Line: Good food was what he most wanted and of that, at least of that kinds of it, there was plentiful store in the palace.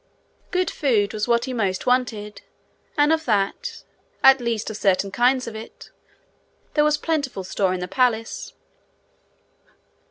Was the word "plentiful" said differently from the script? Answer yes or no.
no